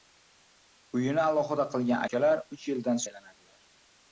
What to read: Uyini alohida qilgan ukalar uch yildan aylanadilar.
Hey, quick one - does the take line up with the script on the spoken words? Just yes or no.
yes